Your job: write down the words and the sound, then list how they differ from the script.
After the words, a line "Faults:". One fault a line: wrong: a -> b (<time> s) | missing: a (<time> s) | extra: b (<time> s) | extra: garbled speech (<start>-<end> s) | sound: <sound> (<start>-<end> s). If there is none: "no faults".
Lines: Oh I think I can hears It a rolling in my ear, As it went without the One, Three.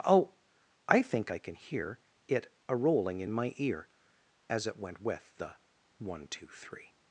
Oh I think I can hear It a rolling in my ear, As it went with the One, Two, Three.
Faults:
wrong: hears -> hear (1.5 s)
wrong: without -> with (5.0 s)
extra: Two (6.3 s)